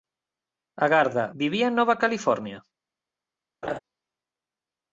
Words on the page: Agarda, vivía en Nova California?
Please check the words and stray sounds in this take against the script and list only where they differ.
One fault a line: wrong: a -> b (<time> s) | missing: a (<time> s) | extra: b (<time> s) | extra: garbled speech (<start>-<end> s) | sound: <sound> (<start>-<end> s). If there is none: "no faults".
sound: laugh (3.6-3.8 s)